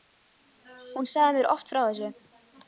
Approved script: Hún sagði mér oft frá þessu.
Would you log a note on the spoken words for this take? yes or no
no